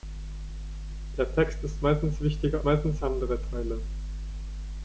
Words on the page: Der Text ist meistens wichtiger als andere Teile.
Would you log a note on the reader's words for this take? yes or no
yes